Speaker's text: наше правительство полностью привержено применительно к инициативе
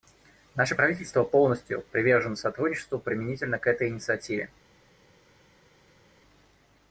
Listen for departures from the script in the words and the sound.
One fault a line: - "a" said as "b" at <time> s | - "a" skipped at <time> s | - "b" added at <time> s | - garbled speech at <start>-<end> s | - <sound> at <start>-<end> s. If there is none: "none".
- "сотрудничеству" added at 2.3 s
- "этой" added at 3.6 s